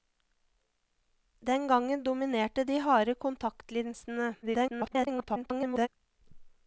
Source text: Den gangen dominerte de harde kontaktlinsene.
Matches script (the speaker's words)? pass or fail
fail